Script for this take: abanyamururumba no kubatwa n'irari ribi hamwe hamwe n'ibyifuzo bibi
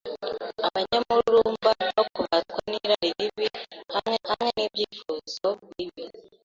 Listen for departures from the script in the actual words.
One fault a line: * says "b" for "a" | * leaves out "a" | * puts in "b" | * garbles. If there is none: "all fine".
all fine